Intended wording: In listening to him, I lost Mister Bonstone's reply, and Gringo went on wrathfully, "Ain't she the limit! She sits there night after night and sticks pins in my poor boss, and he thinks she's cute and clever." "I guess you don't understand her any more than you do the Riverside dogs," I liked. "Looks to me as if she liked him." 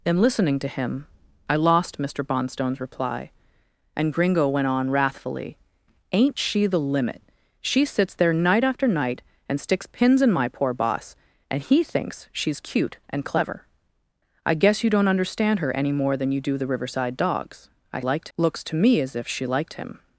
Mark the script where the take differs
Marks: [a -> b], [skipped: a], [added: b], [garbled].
In listening to him, I lost Mister Bonstone's reply, and Gringo went on wrathfully, "Ain't she the limit! She sits there night after night and sticks pins in my poor boss, and he thinks she's cute and clever." "I guess you don't understand her any more than you do the Riverside dogs," I liked. "Looks to me as if she liked him."